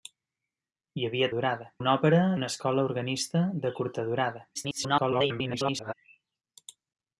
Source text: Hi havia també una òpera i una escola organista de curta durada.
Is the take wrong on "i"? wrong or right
wrong